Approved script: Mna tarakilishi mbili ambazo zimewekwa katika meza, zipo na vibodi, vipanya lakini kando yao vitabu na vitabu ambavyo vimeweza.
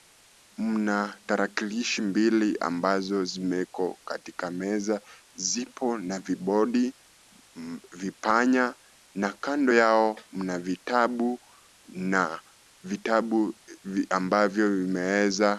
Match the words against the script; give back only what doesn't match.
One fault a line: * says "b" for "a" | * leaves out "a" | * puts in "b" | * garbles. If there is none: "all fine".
* says "na" for "lakini"
* puts in "mna"